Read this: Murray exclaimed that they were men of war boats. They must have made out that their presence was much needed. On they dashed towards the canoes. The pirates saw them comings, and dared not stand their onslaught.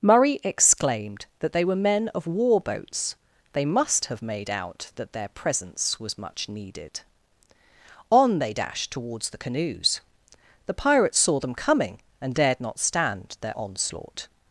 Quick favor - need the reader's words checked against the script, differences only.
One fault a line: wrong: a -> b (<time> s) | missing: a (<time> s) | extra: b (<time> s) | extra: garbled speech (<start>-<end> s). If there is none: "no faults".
wrong: comings -> coming (11.5 s)